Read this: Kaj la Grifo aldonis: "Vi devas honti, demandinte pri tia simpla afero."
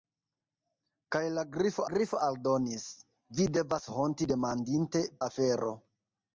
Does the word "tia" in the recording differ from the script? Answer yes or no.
yes